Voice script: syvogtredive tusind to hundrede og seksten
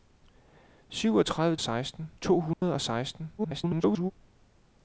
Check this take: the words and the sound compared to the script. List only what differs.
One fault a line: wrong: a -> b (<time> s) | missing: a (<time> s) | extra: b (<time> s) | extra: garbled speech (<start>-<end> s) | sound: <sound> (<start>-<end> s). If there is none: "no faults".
wrong: tusind -> seksten (1.6 s)
sound: dropout (2.5-2.6 s)
extra: garbled speech (3.4-4.1 s)